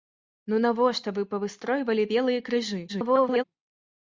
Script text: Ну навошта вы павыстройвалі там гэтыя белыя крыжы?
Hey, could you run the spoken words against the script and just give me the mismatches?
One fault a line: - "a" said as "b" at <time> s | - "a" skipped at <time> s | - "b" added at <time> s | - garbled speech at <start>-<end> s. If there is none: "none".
- "там гэтыя" skipped at 2.1 s
- garbled speech at 2.9-3.4 s